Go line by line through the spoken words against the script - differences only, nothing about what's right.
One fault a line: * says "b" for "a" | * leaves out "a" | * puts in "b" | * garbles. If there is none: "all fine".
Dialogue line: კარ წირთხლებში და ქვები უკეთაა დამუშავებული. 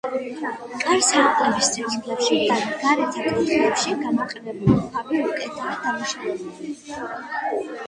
* puts in "სარკმლების"
* puts in "გარეთა კუთხეებში გამოყენებული"